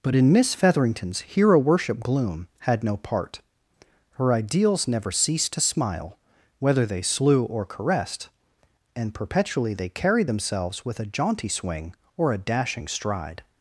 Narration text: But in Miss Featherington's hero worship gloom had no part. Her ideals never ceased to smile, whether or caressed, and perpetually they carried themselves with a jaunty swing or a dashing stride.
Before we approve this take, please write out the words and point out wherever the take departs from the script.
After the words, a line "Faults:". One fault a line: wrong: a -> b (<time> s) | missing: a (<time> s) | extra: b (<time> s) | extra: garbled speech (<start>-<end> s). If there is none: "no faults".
But in Miss Featherington's hero worship gloom had no part. Her ideals never ceased to smile, whether they slew or caressed, and perpetually they carried themselves with a jaunty swing or a dashing stride.
Faults:
extra: they slew (6.9 s)